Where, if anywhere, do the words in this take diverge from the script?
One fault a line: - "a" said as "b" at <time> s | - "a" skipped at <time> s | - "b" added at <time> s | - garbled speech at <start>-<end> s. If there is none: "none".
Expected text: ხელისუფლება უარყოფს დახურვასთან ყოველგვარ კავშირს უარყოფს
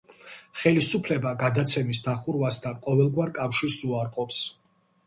- "უარყოფს" said as "გადაცემის" at 1.4 s